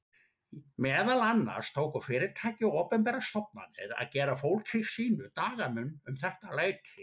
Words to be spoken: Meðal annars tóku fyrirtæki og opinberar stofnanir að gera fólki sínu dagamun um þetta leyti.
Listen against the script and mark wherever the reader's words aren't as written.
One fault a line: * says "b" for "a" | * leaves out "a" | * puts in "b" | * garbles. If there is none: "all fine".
all fine